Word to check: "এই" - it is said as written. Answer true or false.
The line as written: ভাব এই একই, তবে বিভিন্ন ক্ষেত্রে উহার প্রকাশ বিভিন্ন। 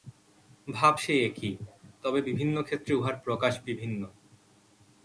false